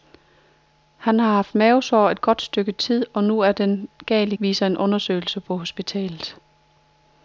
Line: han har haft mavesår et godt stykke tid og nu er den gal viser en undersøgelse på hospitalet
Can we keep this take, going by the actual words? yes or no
yes